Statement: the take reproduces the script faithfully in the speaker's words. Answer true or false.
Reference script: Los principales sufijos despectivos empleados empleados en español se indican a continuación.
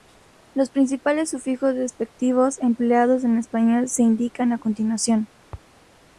false